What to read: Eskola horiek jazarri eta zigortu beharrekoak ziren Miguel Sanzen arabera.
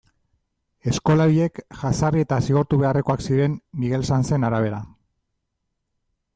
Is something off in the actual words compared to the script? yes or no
no